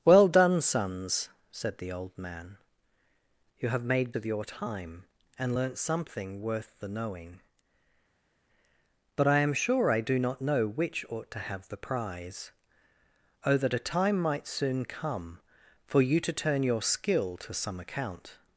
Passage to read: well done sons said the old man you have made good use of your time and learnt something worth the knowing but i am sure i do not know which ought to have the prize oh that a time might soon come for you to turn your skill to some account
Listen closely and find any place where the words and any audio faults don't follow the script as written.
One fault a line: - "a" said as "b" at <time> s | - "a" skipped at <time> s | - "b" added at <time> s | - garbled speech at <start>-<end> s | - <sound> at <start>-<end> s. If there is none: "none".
- "good use" skipped at 4.2 s